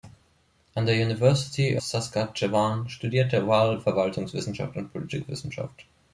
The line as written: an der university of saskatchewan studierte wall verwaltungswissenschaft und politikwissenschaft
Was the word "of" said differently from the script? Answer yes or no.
yes